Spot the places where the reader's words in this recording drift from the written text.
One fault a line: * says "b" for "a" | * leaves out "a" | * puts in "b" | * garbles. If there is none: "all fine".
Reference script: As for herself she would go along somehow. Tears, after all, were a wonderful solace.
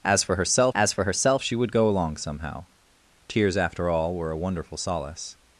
* puts in "as for herself"